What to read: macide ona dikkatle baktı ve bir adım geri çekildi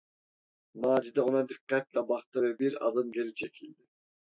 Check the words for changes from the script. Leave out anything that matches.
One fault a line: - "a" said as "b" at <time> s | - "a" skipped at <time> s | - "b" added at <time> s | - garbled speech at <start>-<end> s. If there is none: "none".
none